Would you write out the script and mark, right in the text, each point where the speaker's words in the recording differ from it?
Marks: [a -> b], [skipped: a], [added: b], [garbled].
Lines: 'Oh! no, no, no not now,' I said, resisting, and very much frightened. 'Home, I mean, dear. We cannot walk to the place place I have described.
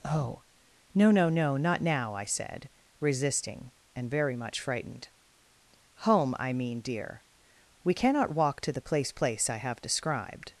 'Oh! no, no, no not now,' I said, resisting, and very much frightened. 'Home, I mean, dear. We cannot walk to the place place I have described.